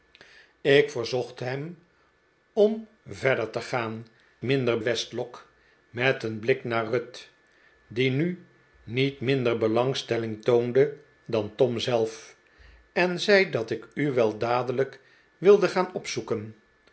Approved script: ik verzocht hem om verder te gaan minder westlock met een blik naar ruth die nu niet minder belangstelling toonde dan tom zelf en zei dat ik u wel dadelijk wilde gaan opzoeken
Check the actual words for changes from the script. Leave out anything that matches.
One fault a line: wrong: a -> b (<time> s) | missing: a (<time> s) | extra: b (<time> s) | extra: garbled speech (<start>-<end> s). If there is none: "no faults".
no faults